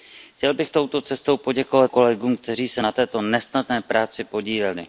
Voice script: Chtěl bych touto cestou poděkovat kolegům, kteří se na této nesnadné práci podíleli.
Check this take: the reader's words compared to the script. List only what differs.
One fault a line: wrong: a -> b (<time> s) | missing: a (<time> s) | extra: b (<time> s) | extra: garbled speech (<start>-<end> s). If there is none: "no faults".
no faults